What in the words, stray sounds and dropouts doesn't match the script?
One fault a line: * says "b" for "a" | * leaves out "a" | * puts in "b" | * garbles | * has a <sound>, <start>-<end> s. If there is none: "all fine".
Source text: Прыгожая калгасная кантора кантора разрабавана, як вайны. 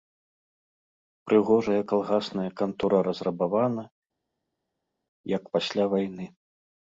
* leaves out "кантора"
* puts in "пасля"